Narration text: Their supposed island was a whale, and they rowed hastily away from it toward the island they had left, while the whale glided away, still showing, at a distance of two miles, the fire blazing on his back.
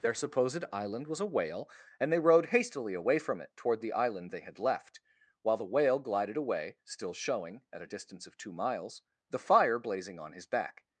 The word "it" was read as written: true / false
true